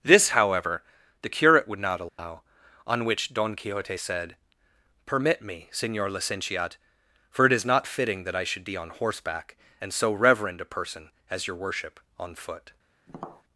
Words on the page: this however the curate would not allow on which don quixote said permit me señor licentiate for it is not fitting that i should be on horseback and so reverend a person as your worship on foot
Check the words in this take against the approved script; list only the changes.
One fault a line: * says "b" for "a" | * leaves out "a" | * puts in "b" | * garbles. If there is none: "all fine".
all fine